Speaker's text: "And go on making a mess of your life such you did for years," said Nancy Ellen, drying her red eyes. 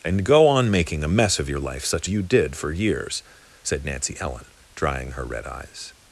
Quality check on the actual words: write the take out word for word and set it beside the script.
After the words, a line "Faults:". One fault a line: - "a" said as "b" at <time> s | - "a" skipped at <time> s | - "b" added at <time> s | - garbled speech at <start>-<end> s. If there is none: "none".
"And go on making a mess of your life such you did for years," said Nancy Ellen, drying her red eyes.
Faults:
none